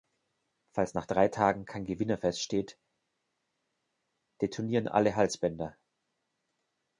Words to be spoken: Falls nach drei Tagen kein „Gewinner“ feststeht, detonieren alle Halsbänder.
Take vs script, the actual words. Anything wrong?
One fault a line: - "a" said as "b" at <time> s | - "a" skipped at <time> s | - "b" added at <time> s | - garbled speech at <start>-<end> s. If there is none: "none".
none